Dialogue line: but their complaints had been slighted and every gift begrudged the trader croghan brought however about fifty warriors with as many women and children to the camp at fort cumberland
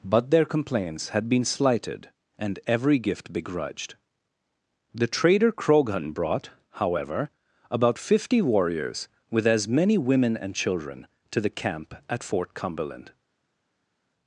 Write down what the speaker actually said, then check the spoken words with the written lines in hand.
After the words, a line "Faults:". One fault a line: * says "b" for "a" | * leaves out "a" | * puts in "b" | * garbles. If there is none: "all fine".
but their complaints had been slighted and every gift begrudged the trader croghan brought however about fifty warriors with as many women and children to the camp at fort cumberland
Faults:
all fine